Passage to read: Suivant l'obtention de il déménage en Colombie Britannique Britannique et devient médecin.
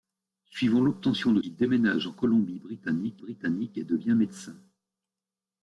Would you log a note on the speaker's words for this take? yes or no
no